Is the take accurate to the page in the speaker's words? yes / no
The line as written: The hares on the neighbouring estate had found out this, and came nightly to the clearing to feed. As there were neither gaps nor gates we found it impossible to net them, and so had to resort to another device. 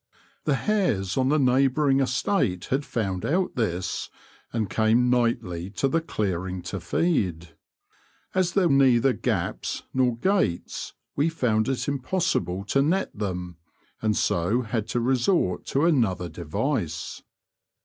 no